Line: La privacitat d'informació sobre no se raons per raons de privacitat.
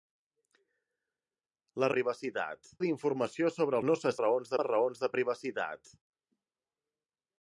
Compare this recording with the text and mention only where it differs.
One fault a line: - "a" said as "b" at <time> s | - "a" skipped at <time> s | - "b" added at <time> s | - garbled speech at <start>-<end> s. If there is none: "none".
none